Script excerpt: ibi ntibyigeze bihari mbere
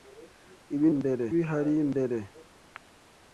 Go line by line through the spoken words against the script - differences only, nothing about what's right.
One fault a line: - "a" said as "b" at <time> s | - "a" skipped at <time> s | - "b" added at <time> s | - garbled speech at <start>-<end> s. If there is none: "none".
- "ntibyigeze" said as "mbere" at 1.0 s